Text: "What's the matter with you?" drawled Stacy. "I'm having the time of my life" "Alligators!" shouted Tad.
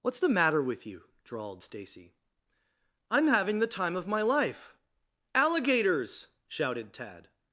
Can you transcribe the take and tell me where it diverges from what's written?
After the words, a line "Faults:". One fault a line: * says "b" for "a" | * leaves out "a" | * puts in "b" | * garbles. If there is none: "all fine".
"What's the matter with you?" drawled Stacy. "I'm having the time of my life" "Alligators!" shouted Tad.
Faults:
all fine